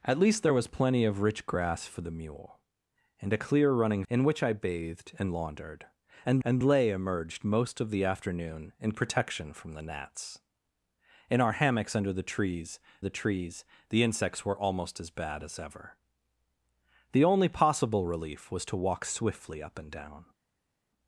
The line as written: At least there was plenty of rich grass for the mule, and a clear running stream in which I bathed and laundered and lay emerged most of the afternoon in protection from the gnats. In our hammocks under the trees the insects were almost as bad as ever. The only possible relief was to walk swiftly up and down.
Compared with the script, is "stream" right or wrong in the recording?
wrong